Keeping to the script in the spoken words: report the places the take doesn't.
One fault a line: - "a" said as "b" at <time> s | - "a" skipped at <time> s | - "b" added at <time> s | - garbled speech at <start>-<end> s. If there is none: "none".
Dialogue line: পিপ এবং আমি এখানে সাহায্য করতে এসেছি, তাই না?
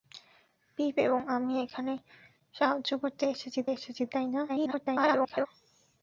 - "এসেছি" added at 3.7 s
- garbled speech at 4.5-5.5 s